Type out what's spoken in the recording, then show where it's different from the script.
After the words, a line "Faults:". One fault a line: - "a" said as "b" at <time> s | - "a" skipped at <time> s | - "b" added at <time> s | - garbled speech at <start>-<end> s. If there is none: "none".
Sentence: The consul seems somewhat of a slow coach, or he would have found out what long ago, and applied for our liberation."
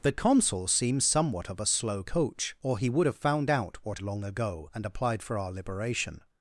The consul seems somewhat of a slow coach, or he would have found out what long ago, and applied for our liberation."
Faults:
none